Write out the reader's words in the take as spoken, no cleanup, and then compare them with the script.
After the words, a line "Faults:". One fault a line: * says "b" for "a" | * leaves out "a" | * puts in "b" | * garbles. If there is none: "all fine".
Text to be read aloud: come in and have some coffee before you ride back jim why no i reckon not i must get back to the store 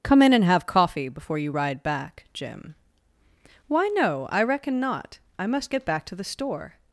come in and have coffee before you ride back jim why no i reckon not i must get back to the store
Faults:
* leaves out "some"